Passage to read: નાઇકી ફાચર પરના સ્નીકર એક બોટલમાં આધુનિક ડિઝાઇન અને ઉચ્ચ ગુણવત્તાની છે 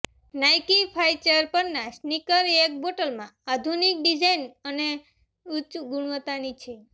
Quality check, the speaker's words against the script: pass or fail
pass